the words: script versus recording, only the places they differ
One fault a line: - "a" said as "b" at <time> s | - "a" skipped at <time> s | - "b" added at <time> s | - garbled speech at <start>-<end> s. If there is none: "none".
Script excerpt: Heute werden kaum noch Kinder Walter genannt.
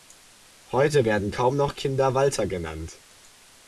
none